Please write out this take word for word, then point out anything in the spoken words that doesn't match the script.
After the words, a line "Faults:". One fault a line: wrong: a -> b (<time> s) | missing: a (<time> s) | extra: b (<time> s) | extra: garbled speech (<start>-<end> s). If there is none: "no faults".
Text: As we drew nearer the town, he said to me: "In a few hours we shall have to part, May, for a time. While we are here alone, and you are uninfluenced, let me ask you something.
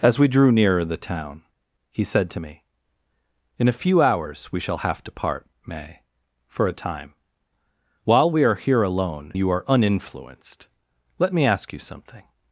As we drew nearer the town, he said to me: "In a few hours we shall have to part, May, for a time. While we are here alone, you are uninfluenced, let me ask you something.
Faults:
missing: and (9.3 s)